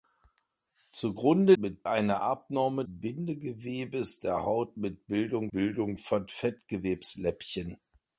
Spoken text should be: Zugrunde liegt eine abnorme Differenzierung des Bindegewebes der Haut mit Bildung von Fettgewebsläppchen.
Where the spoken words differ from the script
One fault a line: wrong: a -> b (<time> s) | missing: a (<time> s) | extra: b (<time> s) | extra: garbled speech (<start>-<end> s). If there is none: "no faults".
wrong: liegt -> mit (1.5 s)
missing: Differenzierung des (2.8 s)
extra: Bildung (5.5 s)